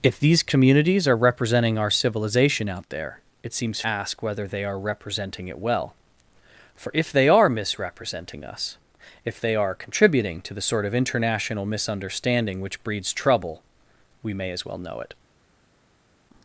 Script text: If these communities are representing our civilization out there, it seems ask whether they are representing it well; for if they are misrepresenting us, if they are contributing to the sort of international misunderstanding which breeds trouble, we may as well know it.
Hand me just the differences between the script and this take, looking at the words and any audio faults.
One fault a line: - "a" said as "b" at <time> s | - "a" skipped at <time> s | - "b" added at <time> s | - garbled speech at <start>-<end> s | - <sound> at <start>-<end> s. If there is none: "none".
none